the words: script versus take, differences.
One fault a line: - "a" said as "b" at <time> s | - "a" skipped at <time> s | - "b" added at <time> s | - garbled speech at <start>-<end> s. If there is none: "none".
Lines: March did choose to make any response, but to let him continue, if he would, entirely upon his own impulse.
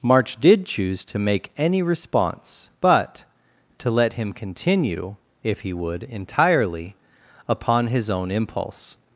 none